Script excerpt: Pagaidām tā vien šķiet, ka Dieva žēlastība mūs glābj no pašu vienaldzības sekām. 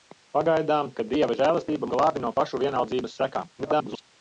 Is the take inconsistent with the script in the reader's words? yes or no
yes